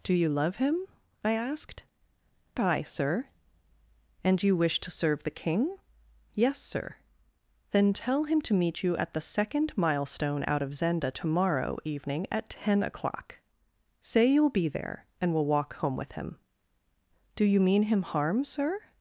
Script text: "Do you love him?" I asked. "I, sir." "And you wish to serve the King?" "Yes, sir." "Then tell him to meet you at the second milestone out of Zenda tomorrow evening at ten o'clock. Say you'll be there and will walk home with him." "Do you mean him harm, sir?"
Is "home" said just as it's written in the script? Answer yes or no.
yes